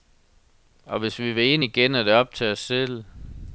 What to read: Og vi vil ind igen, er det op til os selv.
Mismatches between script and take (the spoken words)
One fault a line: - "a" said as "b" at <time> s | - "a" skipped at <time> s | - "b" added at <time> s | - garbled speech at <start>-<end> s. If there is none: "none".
- "hvis" added at 1.0 s